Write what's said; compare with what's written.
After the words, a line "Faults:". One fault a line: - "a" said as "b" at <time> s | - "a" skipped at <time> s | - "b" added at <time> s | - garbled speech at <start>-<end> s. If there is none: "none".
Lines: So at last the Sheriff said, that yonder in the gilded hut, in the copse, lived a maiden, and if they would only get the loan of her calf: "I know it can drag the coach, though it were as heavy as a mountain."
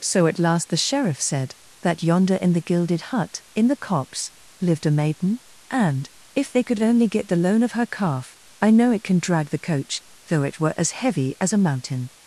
So at last the Sheriff said, that yonder in the gilded hut, in the copse, lived a maiden, and if they could only get the loan of her calf: "I know it can drag the coach, though it were as heavy as a mountain."
Faults:
- "would" said as "could" at 6.6 s